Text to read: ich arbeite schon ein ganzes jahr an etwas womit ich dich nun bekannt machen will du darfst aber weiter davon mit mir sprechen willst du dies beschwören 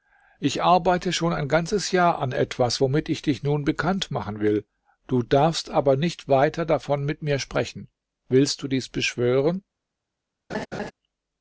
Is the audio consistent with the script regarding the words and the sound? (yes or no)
no